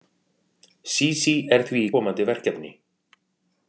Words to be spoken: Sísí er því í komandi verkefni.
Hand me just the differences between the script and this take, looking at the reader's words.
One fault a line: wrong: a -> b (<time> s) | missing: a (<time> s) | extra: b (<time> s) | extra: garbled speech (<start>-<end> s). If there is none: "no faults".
no faults